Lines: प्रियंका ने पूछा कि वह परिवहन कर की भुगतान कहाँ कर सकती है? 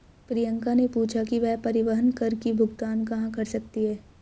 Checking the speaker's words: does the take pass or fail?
pass